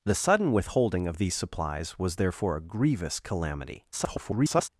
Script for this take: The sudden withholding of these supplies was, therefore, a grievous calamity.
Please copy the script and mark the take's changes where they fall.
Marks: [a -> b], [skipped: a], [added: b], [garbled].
The sudden withholding of these supplies was, therefore, a grievous calamity. [garbled]